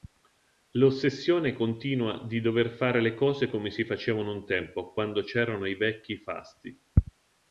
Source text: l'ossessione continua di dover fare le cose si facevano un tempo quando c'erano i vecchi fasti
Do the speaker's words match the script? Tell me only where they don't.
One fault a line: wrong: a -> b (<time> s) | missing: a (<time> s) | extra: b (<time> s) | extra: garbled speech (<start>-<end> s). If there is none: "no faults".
extra: come (3.5 s)